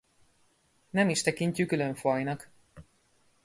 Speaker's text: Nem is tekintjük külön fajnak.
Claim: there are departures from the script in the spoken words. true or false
false